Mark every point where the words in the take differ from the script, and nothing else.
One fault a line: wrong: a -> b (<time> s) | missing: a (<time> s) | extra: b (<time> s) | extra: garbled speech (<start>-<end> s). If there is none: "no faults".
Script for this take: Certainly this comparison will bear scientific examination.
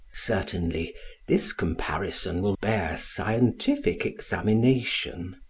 no faults